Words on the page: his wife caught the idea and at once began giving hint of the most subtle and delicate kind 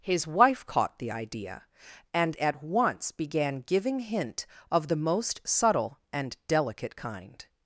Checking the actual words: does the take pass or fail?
pass